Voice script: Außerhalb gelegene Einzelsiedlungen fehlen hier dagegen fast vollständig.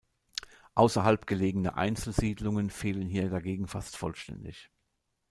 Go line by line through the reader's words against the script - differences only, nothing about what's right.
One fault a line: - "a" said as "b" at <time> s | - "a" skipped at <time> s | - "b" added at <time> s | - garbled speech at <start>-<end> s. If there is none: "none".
none